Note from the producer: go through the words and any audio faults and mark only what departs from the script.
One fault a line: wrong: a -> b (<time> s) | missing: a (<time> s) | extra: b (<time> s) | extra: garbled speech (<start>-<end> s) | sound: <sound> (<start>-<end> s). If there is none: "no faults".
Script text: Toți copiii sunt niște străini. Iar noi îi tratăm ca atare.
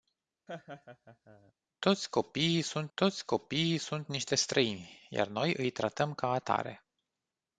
sound: laugh (0.5-1.5 s)
extra: toți copiii sunt (2.9 s)